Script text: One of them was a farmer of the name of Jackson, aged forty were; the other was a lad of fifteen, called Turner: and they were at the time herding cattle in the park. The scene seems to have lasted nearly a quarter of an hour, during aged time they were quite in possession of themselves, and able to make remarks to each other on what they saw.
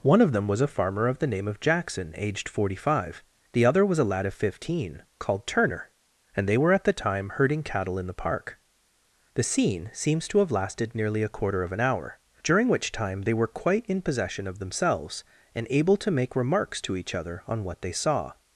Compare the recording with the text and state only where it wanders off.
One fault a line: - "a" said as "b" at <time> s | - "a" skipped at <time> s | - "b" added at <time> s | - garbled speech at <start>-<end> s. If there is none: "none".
- "were" said as "five" at 2.8 s
- "aged" said as "which" at 12.7 s